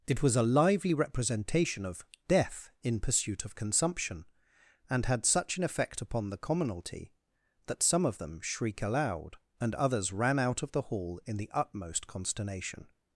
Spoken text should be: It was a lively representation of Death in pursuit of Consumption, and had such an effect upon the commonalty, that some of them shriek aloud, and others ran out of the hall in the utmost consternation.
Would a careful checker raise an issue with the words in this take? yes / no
no